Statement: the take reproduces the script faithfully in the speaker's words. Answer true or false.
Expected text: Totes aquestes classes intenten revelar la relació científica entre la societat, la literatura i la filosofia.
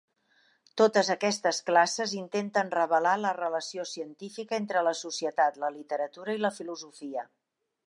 true